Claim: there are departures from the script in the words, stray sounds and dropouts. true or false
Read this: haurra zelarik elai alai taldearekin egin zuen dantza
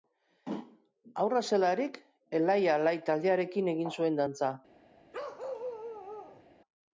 true